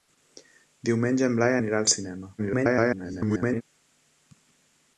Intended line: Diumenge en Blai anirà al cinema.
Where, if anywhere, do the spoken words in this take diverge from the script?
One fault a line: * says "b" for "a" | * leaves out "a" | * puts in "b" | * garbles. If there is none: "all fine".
* garbles